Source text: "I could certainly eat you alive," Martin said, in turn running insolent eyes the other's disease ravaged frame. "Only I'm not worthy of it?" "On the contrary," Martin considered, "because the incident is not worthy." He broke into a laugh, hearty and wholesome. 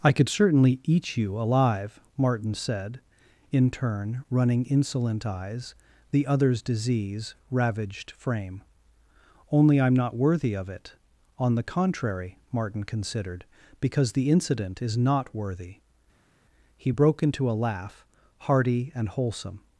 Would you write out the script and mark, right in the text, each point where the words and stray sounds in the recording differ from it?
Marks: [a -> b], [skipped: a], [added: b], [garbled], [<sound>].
"I could certainly eat you alive," Martin said, in turn running insolent eyes the other's disease ravaged frame. "Only I'm not worthy of it?" "On the contrary," Martin considered, "because the incident is not worthy." He broke into a laugh, hearty and wholesome.